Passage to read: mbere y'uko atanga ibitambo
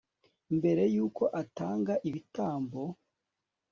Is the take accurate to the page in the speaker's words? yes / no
yes